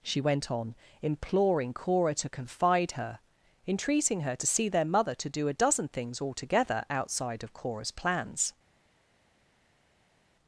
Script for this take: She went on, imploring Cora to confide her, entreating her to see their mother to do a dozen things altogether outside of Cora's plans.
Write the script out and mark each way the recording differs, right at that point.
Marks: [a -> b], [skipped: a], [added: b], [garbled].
She went on, imploring Cora to confide her, entreating her to see their mother to do a dozen things altogether outside of Cora's plans.